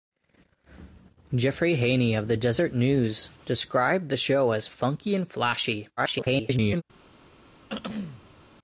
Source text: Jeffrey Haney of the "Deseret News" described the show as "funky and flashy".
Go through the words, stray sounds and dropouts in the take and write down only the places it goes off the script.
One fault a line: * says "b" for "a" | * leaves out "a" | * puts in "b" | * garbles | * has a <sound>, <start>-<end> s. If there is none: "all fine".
* garbles
* has a throat clearing, 7.7-8.4 s